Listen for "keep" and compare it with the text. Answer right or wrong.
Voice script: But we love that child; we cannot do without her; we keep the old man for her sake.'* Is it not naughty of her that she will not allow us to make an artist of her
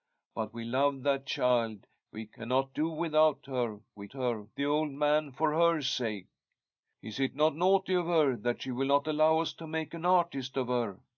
wrong